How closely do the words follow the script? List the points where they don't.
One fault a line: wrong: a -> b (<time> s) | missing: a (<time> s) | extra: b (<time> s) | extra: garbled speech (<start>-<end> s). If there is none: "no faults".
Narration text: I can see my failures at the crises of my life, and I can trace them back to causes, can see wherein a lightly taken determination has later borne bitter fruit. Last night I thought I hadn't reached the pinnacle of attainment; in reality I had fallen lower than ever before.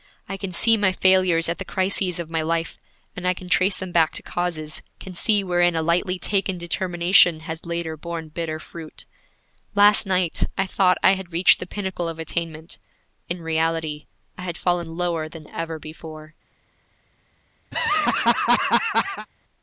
wrong: hadn't -> had (11.2 s)